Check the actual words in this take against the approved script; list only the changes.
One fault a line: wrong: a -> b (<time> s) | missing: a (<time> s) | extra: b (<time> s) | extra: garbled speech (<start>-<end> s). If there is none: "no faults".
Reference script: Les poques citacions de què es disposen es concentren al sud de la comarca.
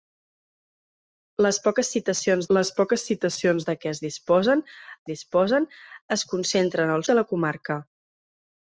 extra: les poques citacions (2.6 s)
extra: disposen (5.1 s)
missing: sud (7.1 s)